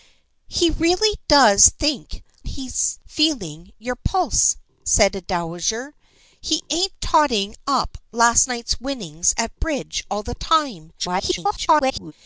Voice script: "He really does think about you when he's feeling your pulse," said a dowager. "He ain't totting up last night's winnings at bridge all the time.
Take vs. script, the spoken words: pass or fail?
fail